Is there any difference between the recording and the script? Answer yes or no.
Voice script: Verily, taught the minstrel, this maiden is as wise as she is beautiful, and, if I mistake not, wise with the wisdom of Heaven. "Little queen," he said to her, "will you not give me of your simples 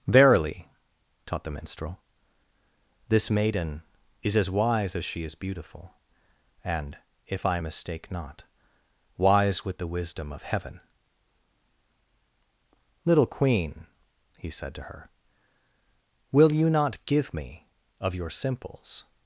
no